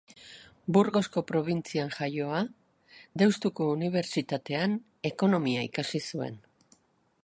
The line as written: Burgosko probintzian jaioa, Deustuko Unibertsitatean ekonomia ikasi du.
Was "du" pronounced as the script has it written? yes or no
no